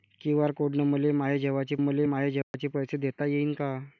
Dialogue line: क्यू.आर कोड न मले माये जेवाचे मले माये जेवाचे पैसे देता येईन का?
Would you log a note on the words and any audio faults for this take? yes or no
yes